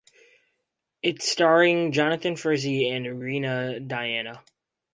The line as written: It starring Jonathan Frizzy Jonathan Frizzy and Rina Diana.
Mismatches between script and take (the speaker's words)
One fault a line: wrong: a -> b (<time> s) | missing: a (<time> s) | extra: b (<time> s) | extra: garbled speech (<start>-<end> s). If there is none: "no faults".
missing: Jonathan Frizzy (2.9 s)